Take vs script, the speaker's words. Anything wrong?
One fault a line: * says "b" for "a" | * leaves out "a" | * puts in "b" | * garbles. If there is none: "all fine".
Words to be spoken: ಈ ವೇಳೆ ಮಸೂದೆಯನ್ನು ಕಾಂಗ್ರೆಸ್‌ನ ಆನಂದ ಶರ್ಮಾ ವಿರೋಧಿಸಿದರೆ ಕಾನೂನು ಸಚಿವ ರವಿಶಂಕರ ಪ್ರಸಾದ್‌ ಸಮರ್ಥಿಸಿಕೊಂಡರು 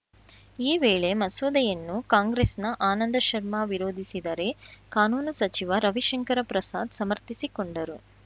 all fine